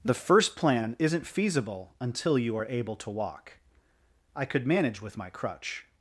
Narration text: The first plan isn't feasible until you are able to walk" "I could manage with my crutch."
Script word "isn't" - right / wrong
right